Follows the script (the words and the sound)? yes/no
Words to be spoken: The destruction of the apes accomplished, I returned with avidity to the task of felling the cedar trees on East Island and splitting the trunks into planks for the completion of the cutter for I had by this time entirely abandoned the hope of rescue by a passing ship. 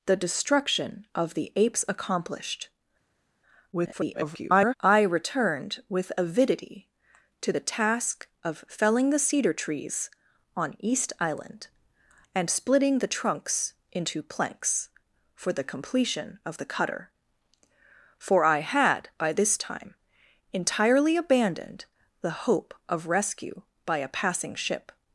no